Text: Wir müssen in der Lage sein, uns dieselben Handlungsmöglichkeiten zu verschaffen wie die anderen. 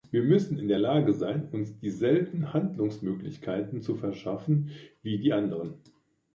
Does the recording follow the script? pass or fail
pass